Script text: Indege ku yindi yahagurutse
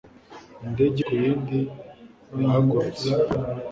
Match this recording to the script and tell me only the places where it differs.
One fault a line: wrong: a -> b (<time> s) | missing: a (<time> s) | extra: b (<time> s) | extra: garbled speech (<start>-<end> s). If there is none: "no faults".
no faults